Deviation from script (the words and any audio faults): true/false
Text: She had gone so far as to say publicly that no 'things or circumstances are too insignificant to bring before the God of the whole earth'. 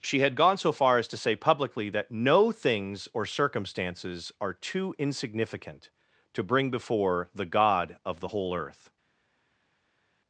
false